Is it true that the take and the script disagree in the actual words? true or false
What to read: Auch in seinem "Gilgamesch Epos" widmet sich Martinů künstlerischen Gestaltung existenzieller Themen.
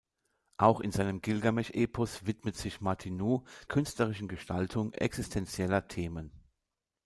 false